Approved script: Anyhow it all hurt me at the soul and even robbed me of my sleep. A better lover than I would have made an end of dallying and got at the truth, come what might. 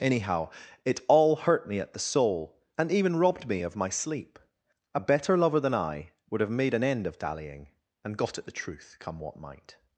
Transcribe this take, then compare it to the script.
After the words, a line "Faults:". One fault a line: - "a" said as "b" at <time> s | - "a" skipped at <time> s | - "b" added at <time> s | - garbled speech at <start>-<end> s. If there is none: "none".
Anyhow it all hurt me at the soul and even robbed me of my sleep. A better lover than I would have made an end of dallying and got at the truth, come what might.
Faults:
none